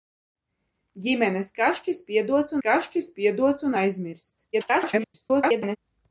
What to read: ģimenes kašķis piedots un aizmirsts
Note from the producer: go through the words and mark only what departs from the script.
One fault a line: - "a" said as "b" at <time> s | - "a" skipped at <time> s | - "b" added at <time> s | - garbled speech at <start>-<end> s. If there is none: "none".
- "kašķis piedots" added at 2.7 s
- garbled speech at 4.5-5.8 s